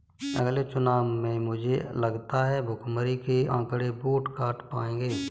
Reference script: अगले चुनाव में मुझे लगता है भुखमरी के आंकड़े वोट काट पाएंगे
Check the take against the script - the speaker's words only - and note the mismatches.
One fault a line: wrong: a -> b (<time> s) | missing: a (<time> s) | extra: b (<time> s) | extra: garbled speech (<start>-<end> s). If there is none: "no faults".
no faults